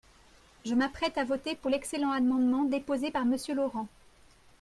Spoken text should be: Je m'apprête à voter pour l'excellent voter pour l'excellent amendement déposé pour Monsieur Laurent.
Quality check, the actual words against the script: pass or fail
fail